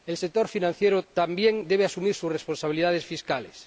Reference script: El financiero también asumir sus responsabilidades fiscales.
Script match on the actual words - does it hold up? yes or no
no